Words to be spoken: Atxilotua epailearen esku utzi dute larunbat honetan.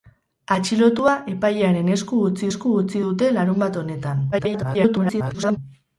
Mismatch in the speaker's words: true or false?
true